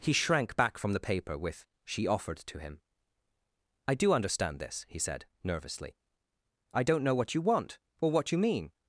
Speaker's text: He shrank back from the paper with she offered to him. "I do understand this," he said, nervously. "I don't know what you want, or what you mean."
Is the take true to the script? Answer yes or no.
yes